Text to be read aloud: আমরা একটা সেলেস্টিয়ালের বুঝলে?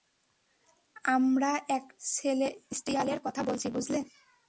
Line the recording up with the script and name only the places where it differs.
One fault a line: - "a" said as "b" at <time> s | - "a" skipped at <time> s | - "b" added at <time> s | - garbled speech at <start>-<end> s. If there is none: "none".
- "কথা বলছি" added at 3.2 s